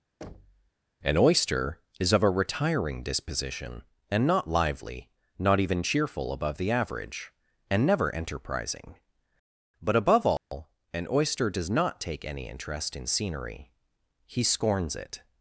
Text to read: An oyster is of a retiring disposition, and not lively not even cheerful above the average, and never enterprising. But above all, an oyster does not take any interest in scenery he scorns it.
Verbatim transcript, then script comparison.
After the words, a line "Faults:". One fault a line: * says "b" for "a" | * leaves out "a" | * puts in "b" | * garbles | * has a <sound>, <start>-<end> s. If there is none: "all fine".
An oyster is of a retiring disposition, and not lively not even cheerful above the average, and never enterprising. But above all, an oyster does not take any interest in scenery he scorns it.
Faults:
* has a thud, 0.2-0.7 s
* has a dropout, 10.4-10.5 s